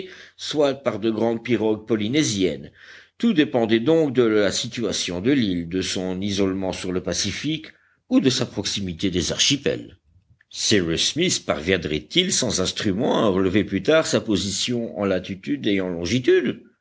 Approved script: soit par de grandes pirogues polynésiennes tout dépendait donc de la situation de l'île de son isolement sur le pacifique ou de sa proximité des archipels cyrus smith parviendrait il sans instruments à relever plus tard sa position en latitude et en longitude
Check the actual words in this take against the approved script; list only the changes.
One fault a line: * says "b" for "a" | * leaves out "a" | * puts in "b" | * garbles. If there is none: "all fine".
all fine